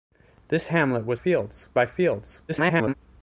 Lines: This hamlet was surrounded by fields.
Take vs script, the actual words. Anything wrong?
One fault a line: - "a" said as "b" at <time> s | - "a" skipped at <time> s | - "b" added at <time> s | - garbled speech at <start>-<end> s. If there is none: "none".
- "surrounded" said as "fields" at 1.1 s
- garbled speech at 2.5-2.9 s